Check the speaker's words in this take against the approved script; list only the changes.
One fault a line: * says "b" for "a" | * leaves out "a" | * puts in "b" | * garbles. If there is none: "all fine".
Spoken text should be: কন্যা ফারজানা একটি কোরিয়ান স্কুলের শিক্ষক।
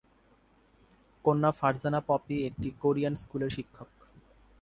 * puts in "পপি"